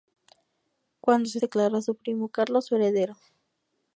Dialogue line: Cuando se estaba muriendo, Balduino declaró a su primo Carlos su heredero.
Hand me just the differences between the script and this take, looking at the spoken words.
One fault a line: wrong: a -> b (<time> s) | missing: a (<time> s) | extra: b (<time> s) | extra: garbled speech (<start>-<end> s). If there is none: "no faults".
missing: estaba muriendo Balduino (1.4 s)